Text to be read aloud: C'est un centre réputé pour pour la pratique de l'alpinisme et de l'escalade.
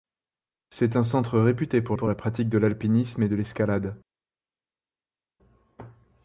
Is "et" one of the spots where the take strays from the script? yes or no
no